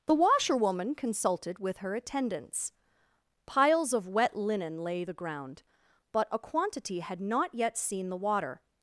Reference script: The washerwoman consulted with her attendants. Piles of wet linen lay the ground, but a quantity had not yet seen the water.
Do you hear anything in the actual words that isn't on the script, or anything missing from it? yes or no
no